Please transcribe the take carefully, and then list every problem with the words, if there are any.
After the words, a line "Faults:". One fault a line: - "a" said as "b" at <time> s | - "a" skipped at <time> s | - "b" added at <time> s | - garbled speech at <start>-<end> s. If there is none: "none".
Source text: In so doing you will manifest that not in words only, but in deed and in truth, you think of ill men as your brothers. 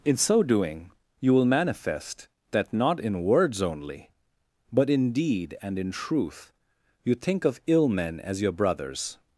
In so doing you will manifest that not in words only, but in deed and in truth, you think of ill men as your brothers.
Faults:
none